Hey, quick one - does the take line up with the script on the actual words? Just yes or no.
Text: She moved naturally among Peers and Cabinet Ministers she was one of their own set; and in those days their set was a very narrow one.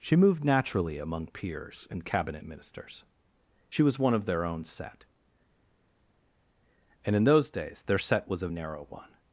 no